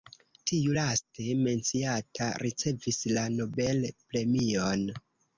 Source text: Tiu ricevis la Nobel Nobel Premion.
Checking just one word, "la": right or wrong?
right